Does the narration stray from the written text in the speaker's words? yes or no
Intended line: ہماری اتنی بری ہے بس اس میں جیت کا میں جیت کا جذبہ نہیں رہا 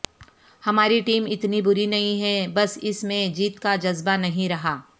yes